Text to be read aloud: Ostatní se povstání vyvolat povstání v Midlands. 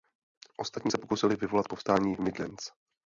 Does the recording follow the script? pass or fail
fail